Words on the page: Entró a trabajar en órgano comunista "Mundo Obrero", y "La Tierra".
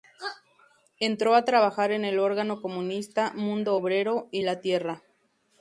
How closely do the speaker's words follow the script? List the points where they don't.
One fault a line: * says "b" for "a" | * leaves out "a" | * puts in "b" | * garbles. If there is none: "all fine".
* puts in "el"